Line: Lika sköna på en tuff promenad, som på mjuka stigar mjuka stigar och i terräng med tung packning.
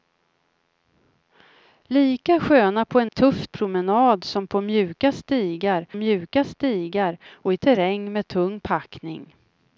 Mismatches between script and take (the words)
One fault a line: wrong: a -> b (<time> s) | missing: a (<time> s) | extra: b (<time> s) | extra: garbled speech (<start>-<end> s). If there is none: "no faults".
no faults